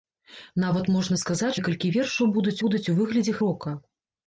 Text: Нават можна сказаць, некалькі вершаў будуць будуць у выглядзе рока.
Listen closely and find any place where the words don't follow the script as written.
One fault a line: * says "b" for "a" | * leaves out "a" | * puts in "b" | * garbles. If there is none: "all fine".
all fine